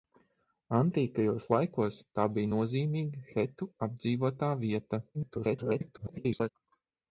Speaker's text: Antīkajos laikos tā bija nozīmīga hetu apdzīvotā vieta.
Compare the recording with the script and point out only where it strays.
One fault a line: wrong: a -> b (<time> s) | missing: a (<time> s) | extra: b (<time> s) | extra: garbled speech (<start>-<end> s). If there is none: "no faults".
extra: garbled speech (5.1-6.5 s)